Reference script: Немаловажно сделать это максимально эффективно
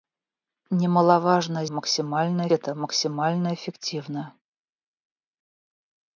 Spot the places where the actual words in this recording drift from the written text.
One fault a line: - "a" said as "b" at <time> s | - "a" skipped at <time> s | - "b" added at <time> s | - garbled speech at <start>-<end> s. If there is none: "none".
- "сделать" said as "максимально" at 1.7 s